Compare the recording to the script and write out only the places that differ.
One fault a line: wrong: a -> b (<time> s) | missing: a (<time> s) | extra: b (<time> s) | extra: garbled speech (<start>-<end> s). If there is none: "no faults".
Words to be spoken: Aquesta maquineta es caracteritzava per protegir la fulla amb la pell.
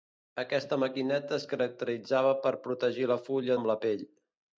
no faults